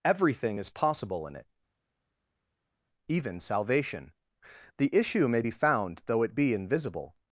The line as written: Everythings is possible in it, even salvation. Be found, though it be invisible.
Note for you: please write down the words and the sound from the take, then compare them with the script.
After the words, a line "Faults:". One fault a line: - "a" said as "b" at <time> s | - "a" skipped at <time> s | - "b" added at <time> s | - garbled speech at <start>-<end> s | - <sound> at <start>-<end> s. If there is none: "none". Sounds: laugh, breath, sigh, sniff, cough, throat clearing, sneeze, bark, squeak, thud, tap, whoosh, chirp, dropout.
Everything is possible in it, even salvation. The issue may be found, though it be invisible.
Faults:
- "Everythings" said as "Everything" at 0.0 s
- "The issue may" added at 4.8 s